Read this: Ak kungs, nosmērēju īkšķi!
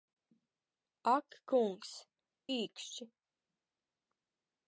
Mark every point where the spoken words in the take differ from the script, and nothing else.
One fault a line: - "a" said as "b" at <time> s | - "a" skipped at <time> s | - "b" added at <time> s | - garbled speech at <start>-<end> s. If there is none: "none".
- "nosmērēju" skipped at 1.9 s